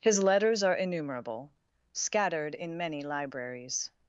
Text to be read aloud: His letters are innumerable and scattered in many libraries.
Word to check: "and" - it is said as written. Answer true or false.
false